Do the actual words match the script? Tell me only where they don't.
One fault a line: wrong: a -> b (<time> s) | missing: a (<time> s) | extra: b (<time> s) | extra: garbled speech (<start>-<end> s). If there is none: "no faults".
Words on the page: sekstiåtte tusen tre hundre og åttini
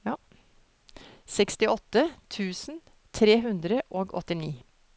no faults